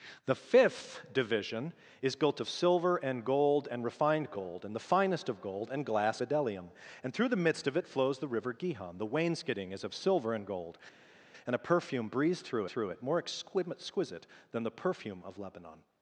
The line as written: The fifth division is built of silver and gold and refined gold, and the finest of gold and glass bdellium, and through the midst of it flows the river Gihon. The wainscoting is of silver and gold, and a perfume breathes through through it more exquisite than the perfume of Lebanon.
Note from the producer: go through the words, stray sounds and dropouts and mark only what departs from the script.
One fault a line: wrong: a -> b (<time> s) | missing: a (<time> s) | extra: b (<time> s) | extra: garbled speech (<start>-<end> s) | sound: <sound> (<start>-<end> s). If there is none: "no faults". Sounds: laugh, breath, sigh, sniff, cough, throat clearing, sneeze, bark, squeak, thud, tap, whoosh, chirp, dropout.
no faults